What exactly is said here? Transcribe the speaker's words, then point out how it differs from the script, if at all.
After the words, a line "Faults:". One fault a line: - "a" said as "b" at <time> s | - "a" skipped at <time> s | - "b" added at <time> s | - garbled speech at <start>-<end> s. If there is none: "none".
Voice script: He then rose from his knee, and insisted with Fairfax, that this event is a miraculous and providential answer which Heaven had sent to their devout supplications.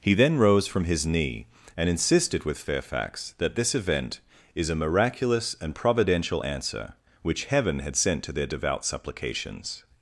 He then rose from his knee, and insisted with Fairfax, that this event is a miraculous and providential answer which Heaven had sent to their devout supplications.
Faults:
none